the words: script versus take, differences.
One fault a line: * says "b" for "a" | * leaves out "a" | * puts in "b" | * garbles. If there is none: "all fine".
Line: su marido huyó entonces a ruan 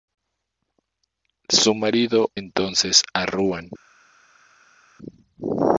* leaves out "huyó"